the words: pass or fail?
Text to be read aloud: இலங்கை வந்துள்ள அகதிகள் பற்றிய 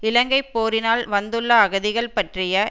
fail